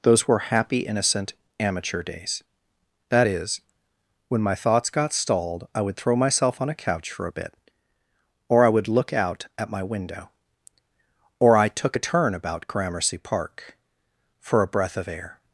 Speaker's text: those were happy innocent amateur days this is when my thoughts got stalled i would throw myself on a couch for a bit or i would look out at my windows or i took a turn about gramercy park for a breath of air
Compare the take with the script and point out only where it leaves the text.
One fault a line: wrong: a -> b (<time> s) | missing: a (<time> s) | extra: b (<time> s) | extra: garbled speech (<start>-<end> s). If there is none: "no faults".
wrong: this -> that (3.1 s)
wrong: windows -> window (9.8 s)